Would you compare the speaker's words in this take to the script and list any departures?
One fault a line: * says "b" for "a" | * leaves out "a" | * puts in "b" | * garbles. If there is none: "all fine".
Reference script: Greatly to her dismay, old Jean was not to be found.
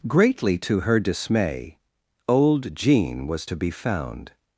* leaves out "not"